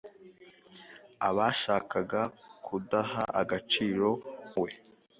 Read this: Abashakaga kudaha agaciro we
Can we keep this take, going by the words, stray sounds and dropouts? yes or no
yes